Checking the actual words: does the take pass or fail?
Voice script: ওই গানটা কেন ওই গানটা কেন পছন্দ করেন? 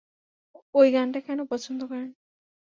fail